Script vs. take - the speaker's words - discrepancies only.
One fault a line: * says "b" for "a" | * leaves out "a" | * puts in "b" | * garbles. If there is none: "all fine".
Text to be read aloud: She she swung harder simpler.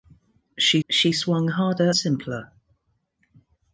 all fine